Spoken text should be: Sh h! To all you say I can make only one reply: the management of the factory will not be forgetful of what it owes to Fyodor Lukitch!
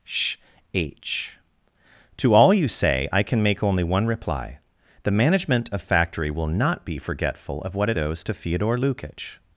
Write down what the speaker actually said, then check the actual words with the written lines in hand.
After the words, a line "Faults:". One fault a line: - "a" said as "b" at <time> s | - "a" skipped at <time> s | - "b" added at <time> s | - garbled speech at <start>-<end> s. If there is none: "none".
Sh h! To all you say I can make only one reply: the management of factory will not be forgetful of what it owes to Fyodor Lukitch!
Faults:
- "the" skipped at 5.8 s